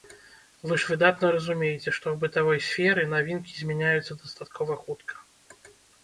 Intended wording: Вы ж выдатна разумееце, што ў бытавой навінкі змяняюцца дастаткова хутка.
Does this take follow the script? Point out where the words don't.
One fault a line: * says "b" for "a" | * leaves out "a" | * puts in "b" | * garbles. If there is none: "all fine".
* puts in "сферы"